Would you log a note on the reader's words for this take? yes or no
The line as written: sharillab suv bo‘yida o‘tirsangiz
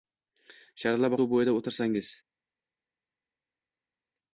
no